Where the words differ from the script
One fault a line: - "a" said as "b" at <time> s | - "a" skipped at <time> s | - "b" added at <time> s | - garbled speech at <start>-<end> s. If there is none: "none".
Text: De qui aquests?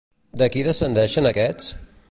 - "descendeixen" added at 0.7 s